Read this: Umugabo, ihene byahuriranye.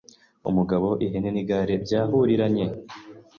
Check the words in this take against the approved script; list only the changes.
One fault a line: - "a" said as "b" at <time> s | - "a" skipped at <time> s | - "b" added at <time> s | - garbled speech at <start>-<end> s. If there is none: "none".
- "n'igare" added at 1.3 s